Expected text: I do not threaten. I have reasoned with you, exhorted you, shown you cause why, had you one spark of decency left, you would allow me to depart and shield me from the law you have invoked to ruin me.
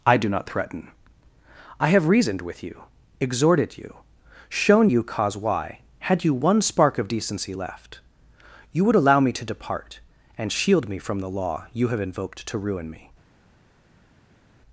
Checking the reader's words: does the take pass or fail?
pass